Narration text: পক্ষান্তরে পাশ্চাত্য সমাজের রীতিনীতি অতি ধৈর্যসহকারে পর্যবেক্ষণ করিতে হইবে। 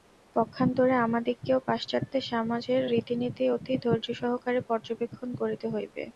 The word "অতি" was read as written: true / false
true